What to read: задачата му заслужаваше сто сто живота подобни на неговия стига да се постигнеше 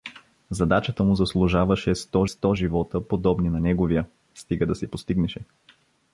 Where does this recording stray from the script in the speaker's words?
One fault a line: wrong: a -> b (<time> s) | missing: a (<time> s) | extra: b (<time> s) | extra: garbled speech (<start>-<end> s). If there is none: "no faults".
no faults